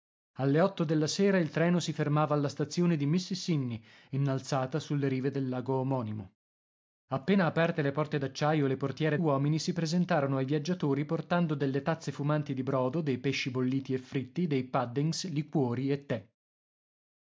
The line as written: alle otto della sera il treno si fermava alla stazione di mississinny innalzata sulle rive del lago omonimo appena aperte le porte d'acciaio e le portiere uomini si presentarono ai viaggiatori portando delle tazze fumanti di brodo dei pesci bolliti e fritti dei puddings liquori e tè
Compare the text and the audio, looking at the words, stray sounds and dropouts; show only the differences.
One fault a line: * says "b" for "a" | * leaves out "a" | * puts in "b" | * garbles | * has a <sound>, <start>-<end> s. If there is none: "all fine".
all fine